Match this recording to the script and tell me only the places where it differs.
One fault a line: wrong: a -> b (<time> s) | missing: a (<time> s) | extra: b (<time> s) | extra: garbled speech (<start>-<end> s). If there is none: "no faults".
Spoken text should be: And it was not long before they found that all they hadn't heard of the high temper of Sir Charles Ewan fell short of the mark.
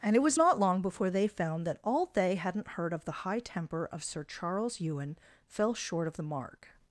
no faults